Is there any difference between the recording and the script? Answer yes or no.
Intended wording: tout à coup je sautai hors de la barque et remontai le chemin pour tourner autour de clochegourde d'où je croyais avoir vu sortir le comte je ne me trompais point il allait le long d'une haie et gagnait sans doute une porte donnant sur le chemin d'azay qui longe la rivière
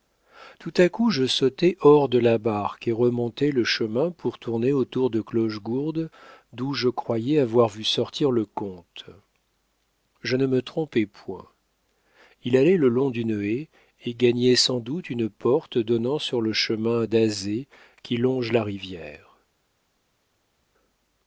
no